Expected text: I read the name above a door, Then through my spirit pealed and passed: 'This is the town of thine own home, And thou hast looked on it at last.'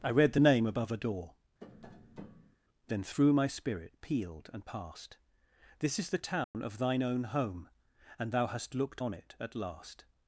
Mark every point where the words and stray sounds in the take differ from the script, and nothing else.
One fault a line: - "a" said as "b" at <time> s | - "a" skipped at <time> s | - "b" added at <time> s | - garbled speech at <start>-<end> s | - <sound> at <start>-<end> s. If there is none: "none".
- tap at 1.6-2.6 s
- dropout at 6.4-6.5 s